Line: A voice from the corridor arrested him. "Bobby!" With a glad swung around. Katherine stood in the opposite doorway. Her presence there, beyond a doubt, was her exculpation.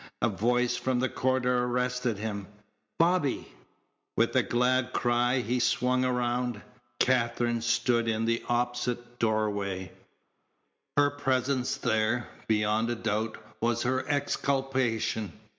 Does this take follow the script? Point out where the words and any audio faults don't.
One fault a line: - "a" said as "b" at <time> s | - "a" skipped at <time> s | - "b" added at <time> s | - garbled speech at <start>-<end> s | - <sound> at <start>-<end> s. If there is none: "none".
- "cry he" added at 4.9 s